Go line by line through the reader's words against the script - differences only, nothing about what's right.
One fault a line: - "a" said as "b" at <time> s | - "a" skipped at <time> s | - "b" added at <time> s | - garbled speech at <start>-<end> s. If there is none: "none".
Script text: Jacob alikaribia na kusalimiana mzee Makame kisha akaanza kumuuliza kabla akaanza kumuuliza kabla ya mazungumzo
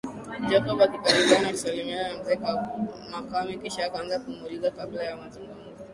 - "na" added at 2.1 s
- "akaanza kumuuliza kabla" skipped at 5.0 s